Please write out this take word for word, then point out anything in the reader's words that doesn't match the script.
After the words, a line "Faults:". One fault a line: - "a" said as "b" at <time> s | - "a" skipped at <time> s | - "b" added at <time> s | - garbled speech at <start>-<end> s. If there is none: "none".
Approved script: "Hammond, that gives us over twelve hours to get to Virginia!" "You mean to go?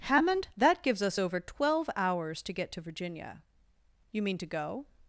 "Hammond, that gives us over twelve hours to get to Virginia!" "You mean to go?
Faults:
none